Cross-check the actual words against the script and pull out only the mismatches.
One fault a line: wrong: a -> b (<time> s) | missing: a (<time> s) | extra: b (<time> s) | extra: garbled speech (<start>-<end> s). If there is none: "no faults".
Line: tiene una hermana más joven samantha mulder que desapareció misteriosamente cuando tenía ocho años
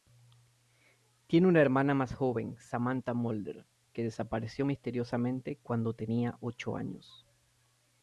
no faults